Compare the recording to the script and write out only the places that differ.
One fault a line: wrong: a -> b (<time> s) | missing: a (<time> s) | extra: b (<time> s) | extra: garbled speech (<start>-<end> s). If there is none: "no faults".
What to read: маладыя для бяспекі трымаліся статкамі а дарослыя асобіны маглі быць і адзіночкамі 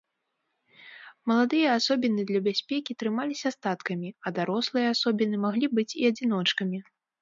extra: асобіны (1.8 s)